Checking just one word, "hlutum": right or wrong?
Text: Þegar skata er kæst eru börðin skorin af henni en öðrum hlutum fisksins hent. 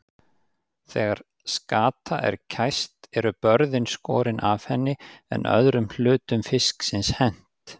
right